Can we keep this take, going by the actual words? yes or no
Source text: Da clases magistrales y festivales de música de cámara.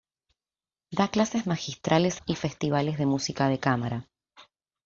yes